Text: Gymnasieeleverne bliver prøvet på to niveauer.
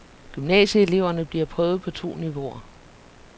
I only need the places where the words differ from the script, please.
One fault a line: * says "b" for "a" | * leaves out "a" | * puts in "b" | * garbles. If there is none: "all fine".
all fine